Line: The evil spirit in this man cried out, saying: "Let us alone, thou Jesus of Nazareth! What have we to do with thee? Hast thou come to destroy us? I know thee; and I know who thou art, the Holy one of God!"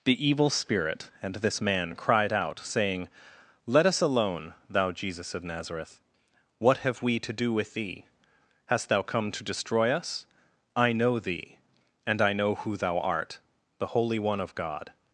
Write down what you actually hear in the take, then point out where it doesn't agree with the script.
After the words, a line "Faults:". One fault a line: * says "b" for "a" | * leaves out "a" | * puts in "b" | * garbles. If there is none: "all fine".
The evil spirit and this man cried out, saying: "Let us alone, thou Jesus of Nazareth! What have we to do with thee? Hast thou come to destroy us? I know thee; and I know who thou art, the Holy one of God!"
Faults:
* says "and" for "in"